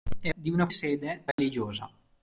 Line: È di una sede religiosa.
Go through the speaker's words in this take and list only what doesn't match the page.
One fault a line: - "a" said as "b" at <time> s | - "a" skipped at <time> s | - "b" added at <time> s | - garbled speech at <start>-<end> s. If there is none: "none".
none